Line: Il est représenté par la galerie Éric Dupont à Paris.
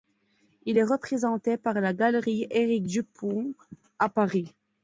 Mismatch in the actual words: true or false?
false